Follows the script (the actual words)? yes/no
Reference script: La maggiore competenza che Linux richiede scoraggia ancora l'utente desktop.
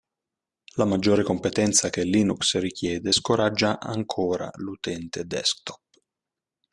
yes